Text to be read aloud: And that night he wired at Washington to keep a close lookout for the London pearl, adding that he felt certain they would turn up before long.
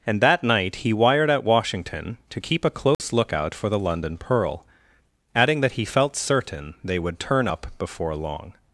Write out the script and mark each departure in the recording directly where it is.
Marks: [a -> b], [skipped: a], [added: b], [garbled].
And that night he wired at Washington to keep a close lookout for the London pearl, adding that he felt certain they would turn up before long.